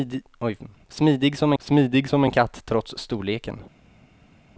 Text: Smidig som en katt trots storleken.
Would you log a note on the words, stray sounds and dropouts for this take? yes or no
yes